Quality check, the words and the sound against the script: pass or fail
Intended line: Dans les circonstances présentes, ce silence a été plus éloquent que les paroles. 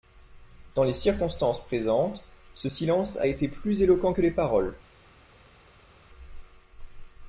pass